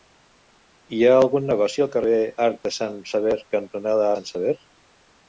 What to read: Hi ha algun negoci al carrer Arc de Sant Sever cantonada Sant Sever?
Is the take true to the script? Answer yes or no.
yes